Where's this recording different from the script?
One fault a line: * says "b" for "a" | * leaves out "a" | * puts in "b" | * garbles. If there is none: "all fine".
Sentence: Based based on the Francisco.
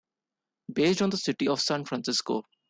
* leaves out "based"
* puts in "city of San"